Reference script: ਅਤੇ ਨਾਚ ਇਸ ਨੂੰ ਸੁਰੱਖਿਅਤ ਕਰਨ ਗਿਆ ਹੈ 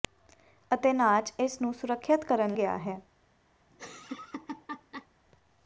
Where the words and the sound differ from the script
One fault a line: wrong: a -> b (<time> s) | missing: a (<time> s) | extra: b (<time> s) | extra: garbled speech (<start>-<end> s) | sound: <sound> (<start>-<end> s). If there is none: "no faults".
sound: laugh (3.7-5.1 s)